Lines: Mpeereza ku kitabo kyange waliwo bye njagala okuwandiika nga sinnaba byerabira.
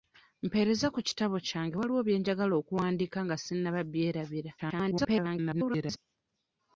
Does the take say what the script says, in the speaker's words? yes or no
no